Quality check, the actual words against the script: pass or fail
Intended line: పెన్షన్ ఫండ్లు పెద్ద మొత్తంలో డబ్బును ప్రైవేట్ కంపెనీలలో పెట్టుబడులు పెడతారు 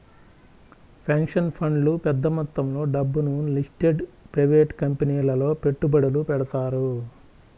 fail